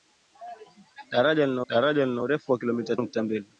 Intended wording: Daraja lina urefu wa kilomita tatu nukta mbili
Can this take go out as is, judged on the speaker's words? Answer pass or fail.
fail